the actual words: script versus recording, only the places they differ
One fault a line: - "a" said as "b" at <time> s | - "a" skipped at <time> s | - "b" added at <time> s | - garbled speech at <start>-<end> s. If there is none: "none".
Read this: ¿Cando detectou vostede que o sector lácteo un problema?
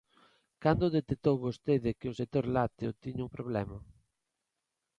- "tiña" added at 3.0 s